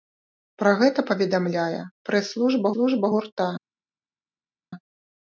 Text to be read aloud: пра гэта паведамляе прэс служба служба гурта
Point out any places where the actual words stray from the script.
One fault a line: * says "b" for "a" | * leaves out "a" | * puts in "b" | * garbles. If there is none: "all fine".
all fine